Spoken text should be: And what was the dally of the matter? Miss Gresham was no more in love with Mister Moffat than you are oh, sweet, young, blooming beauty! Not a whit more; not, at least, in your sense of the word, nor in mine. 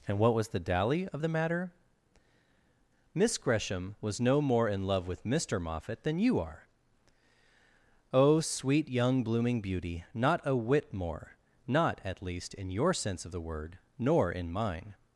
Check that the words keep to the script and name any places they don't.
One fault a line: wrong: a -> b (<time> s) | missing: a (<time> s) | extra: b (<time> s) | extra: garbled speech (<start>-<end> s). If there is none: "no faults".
no faults